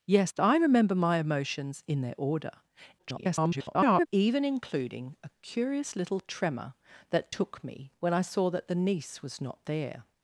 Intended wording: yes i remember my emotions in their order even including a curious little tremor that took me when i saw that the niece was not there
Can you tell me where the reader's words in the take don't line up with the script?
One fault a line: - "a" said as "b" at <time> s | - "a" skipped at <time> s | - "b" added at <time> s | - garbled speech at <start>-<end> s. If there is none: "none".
- garbled speech at 3.0-4.1 s